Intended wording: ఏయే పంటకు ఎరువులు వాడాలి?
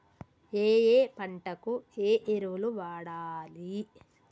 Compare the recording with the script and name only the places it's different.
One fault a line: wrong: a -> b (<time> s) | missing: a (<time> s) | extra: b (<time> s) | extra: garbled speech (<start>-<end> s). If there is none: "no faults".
extra: ఏ (2.0 s)